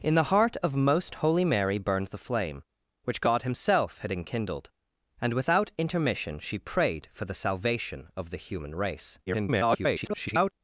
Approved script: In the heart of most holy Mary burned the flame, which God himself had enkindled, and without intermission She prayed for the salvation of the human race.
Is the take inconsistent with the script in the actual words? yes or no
yes